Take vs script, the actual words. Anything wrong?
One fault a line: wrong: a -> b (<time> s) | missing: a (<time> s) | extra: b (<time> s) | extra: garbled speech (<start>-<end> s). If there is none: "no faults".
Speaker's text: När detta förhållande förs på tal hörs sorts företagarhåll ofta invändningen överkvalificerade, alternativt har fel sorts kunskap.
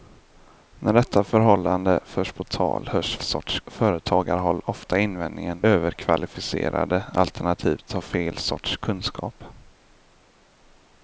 no faults